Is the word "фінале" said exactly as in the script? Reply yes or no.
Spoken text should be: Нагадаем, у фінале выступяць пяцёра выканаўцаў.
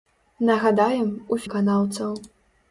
no